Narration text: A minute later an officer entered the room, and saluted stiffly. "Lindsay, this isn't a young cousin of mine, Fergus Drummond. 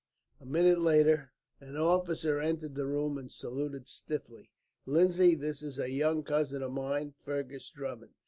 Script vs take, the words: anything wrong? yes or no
yes